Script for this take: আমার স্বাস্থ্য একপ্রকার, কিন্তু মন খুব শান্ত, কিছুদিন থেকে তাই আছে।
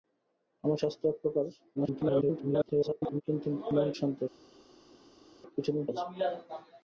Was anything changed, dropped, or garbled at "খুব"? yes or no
yes